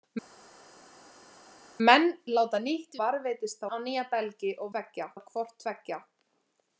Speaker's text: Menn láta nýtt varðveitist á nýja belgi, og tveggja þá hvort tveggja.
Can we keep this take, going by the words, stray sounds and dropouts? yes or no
yes